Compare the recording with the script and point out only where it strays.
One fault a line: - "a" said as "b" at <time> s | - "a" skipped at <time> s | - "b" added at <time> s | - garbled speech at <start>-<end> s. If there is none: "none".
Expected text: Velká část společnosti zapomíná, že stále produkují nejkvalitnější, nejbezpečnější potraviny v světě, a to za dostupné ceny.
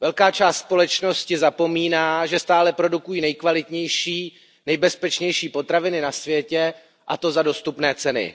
- "v" said as "na" at 6.0 s